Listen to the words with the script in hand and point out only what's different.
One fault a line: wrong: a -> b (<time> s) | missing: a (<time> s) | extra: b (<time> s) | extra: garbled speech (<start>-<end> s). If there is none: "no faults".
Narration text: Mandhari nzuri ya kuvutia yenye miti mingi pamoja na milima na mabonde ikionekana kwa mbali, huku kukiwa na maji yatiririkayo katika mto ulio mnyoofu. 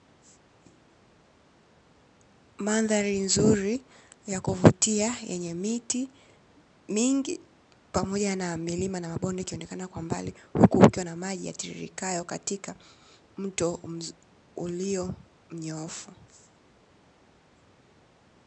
no faults